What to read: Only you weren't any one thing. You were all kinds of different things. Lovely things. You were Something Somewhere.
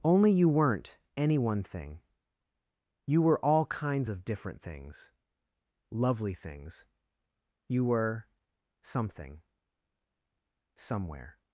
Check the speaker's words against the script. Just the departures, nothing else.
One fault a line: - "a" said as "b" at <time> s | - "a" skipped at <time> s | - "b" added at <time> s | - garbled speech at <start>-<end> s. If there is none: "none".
none